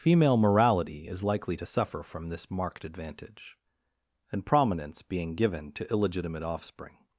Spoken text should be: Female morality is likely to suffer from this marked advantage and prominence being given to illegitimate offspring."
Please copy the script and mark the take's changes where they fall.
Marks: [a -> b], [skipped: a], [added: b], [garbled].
Female morality is likely to suffer from this marked advantage and prominence being given to illegitimate offspring."